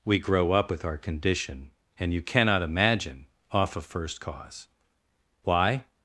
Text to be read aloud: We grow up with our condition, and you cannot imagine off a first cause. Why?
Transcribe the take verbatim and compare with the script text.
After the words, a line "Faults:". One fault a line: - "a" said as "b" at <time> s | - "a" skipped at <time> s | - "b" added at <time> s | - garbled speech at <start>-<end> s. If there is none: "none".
We grow up with our condition, and you cannot imagine off a first cause. Why?
Faults:
none